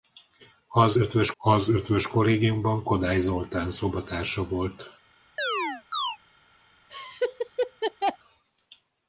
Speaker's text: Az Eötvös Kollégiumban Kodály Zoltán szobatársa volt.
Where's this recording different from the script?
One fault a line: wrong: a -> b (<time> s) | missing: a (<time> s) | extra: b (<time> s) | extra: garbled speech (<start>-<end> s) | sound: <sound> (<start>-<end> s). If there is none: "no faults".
extra: az Eötvös (1.4 s)
sound: chirp (5.4-6.2 s)
sound: laugh (6.9-8.2 s)